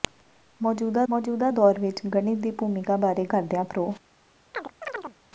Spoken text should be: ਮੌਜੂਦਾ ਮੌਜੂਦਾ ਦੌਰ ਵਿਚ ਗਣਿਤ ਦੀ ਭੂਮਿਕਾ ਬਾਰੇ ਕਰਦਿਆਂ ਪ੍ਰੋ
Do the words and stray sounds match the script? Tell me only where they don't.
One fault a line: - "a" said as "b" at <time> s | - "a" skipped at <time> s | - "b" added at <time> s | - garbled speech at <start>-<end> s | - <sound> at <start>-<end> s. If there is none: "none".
- chirp at 4.5-5.2 s